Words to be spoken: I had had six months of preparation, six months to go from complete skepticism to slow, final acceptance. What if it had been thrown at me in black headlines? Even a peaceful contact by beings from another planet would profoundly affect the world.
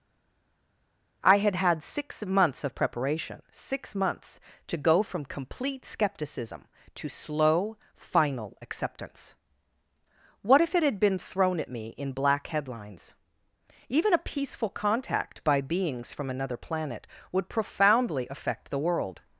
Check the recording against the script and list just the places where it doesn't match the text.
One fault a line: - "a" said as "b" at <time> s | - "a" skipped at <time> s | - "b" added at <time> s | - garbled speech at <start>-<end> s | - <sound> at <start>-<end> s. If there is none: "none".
none